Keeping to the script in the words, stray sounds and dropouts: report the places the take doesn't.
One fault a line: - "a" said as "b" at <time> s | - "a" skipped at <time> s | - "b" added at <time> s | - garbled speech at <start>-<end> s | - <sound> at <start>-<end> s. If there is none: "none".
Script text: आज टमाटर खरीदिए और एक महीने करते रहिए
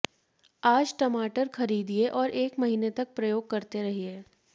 - "तक प्रयोग" added at 2.9 s